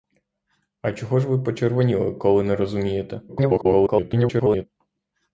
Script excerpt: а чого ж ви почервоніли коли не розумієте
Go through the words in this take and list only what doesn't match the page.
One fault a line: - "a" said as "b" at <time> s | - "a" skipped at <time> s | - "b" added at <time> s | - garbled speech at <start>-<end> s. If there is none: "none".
- garbled speech at 3.3-4.7 s